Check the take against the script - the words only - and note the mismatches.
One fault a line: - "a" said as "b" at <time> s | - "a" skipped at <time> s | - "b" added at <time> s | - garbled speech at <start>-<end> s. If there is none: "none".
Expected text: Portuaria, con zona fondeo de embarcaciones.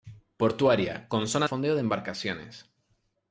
none